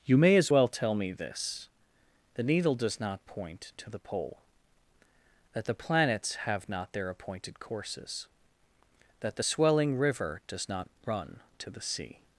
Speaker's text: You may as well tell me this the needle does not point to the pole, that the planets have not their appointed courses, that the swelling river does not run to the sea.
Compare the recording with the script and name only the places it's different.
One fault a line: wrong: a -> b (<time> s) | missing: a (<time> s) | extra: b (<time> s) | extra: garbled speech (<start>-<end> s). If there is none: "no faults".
no faults